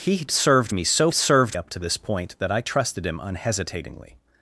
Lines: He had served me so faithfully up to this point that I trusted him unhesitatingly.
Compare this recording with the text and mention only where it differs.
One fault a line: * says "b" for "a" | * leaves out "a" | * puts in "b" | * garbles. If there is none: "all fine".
* says "served" for "faithfully"